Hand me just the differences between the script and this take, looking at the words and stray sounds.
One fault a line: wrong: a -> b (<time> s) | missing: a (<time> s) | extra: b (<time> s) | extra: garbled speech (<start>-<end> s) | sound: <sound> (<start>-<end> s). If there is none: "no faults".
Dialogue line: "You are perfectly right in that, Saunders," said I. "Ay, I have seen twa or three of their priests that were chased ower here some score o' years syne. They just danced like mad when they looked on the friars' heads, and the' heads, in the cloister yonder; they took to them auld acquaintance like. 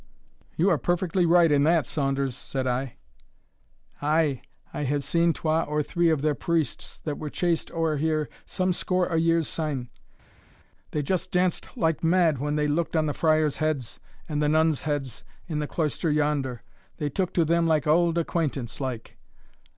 extra: nuns (14.5 s)
extra: like (17.7 s)